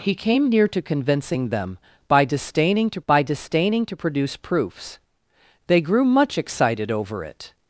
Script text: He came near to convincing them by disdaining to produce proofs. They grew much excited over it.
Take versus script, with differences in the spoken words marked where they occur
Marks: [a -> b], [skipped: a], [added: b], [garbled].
He came near to convincing them by disdaining to [added: by disdaining to] produce proofs. They grew much excited over it.